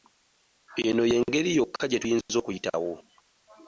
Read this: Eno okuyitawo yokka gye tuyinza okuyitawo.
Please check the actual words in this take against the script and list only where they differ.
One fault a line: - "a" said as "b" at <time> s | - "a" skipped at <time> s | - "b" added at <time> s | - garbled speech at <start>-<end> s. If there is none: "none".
- "okuyitawo" said as "y'engeri" at 1.1 s